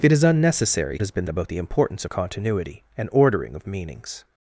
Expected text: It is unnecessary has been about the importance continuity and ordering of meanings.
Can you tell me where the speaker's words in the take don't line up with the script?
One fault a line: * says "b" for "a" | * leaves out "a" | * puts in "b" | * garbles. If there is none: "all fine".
all fine